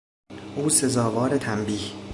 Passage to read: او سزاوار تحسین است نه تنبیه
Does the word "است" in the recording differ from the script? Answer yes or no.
yes